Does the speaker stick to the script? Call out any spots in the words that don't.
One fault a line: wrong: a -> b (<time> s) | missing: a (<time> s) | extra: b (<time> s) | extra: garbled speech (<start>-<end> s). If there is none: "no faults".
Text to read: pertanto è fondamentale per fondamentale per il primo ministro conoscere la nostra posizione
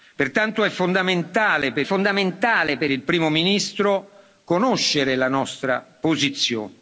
no faults